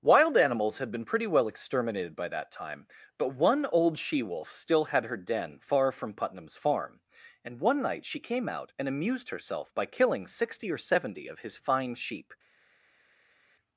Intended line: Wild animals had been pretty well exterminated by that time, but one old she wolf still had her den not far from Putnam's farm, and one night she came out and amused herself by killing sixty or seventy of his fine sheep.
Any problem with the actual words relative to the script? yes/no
yes